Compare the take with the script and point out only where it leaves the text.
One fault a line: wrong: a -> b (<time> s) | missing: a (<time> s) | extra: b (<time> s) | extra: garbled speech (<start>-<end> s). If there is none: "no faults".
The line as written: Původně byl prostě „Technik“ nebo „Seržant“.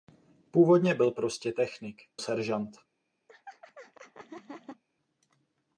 missing: nebo (2.0 s)